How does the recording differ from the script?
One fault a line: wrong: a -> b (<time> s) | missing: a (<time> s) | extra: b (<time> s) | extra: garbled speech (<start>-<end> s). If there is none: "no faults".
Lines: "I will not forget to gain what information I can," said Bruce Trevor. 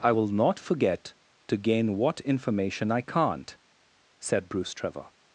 wrong: can -> can't (3.0 s)